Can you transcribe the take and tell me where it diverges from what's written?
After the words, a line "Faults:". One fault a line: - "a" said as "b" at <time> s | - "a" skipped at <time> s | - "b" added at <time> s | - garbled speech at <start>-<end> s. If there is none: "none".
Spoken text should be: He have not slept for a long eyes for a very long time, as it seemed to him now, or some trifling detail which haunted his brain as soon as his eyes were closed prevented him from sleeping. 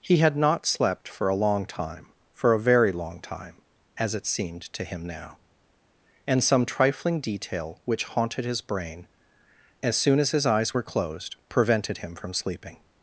He had not slept for a long time for a very long time, as it seemed to him now, and some trifling detail which haunted his brain as soon as his eyes were closed prevented him from sleeping.
Faults:
- "have" said as "had" at 0.2 s
- "eyes" said as "time" at 1.6 s
- "or" said as "and" at 6.2 s